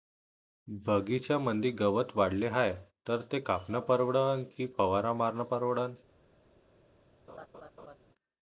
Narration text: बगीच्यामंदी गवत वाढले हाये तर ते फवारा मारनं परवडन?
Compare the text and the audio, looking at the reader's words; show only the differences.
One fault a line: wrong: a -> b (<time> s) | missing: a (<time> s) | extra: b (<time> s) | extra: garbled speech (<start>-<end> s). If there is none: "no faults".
extra: कापनं परवडन की (3.4 s)